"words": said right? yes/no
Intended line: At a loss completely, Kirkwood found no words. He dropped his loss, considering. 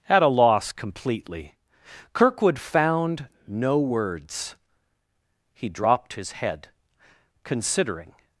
yes